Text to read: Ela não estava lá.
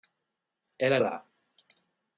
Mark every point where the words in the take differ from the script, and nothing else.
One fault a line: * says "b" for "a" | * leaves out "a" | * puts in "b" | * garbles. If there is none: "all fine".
* leaves out "não estava"